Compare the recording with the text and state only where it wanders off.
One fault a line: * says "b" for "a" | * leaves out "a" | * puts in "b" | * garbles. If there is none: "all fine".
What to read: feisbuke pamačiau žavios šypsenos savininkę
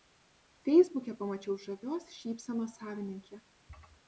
all fine